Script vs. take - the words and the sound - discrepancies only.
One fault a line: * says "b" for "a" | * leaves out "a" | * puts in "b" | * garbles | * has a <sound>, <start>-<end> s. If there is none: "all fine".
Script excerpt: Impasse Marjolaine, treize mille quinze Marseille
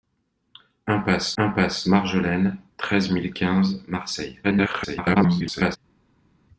* puts in "impasse"
* garbles